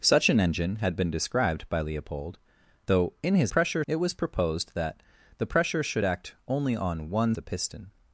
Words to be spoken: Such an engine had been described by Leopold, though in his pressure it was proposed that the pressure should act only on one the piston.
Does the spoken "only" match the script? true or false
true